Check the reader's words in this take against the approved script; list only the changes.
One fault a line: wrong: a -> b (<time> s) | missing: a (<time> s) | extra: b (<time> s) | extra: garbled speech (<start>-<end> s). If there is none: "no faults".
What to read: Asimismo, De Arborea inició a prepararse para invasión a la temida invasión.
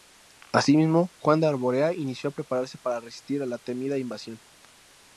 extra: Juan (1.2 s)
wrong: invasión -> resistir (3.0 s)